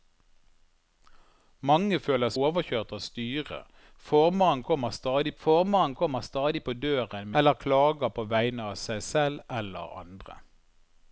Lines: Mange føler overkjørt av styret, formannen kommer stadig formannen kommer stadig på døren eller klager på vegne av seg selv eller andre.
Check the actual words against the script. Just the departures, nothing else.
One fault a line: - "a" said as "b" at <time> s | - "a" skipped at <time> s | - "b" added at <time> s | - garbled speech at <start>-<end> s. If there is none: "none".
none